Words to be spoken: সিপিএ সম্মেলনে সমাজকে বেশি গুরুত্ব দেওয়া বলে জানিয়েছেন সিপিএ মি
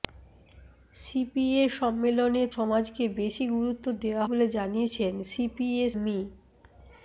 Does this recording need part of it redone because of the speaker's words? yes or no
no